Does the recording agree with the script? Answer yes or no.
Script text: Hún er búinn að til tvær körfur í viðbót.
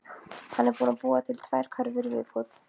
no